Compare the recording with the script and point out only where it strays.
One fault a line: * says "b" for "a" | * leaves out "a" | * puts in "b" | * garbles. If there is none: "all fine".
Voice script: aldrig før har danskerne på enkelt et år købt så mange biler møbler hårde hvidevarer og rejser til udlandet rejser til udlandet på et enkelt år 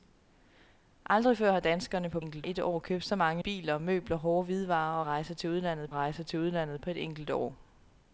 all fine